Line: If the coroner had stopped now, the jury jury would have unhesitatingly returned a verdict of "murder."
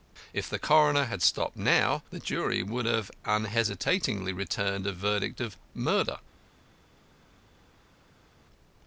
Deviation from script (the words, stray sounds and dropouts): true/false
true